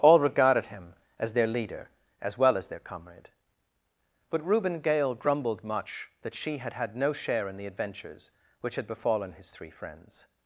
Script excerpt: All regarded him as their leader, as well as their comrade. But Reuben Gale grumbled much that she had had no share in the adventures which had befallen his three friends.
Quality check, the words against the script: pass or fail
pass